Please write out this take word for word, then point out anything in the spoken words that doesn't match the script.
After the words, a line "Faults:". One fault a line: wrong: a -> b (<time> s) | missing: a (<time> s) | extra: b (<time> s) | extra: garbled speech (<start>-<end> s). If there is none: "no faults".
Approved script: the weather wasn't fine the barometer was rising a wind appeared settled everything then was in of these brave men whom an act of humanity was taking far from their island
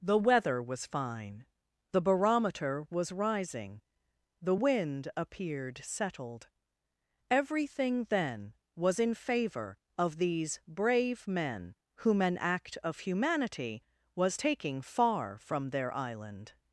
the weather was fine the barometer was rising the wind appeared settled everything then was in favor of these brave men whom an act of humanity was taking far from their island
Faults:
wrong: wasn't -> was (0.6 s)
wrong: a -> the (4.4 s)
extra: favor (9.1 s)